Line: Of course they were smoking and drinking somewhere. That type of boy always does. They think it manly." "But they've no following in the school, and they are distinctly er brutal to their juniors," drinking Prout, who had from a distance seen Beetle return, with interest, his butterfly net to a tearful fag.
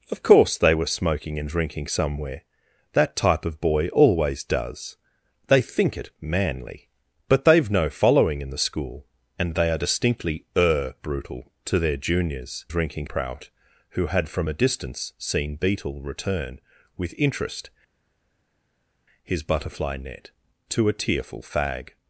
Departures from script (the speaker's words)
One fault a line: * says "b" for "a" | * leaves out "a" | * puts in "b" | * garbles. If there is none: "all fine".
all fine